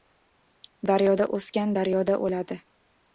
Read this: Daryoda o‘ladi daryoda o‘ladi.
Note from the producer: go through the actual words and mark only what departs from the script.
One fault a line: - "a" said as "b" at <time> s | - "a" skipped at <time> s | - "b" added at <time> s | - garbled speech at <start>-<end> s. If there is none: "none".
- "o‘ladi" said as "o‘sgan" at 1.4 s